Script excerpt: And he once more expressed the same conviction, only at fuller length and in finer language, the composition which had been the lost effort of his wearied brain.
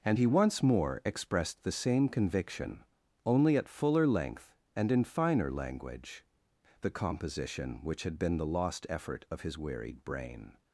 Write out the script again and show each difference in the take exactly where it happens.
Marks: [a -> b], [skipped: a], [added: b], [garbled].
And he once more expressed the same conviction, only at fuller length and in finer language, the composition which had been the lost effort of his wearied brain.